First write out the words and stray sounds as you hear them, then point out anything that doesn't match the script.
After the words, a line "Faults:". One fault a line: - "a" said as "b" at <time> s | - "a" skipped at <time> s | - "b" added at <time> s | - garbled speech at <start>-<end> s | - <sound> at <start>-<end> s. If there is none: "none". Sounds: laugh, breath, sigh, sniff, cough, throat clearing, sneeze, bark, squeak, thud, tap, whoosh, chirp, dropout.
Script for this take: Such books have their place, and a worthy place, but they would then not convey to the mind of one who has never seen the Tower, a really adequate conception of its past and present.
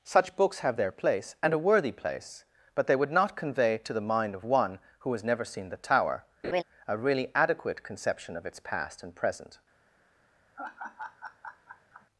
Such books have their place, and a worthy place, but they would not convey to the mind of one who has never seen the Tower, a really adequate conception of its past and present.
Faults:
- "then" skipped at 3.1 s
- laugh at 6.4-6.6 s
- laugh at 10.6-12.1 s